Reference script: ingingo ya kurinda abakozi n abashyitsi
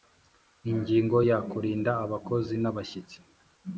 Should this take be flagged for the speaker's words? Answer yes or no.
no